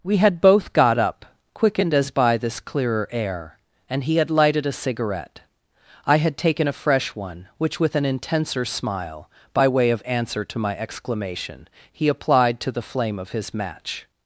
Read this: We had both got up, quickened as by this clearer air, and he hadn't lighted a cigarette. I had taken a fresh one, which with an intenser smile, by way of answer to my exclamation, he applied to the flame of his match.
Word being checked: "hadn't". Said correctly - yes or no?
no